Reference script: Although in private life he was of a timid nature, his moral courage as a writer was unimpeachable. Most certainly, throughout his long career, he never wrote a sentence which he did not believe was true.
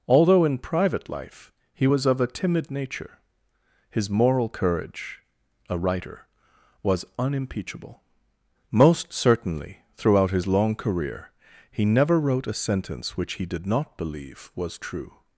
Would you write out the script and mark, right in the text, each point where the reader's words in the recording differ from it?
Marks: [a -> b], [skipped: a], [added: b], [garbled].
Although in private life he was of a timid nature, his moral courage [skipped: as] a writer was unimpeachable. Most certainly, throughout his long career, he never wrote a sentence which he did not believe was true.